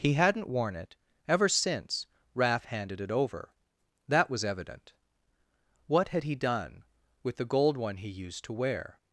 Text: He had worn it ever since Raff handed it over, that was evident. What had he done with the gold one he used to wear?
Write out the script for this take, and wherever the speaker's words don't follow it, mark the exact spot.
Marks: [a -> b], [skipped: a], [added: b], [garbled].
He [had -> hadn't] worn it ever since Raff handed it over, that was evident. What had he done with the gold one he used to wear?